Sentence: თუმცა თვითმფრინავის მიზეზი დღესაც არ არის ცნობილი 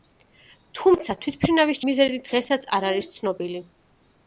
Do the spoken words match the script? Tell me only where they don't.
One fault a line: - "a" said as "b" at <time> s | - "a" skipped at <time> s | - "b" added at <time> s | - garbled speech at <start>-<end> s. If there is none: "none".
none